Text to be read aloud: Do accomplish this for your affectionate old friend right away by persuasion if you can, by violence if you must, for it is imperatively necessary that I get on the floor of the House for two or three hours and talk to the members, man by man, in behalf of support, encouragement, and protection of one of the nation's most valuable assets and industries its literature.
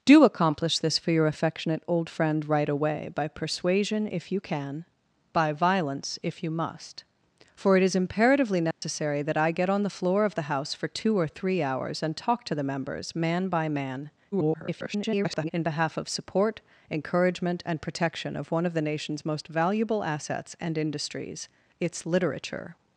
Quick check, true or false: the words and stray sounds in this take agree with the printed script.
false